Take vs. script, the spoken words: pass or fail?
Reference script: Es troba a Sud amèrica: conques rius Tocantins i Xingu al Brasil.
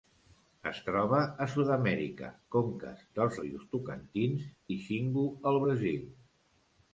fail